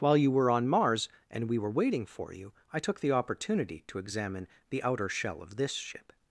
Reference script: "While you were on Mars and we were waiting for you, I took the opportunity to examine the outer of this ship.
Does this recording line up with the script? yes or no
no